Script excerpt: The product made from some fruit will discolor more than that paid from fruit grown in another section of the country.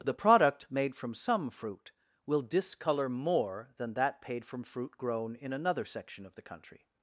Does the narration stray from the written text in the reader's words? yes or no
no